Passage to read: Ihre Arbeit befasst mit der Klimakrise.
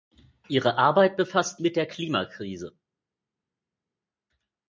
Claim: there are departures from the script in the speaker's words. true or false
false